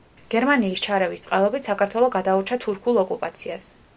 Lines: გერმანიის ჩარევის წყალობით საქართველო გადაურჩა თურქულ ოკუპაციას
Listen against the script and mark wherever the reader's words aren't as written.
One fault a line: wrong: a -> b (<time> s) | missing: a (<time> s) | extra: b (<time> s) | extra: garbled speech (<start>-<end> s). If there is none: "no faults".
no faults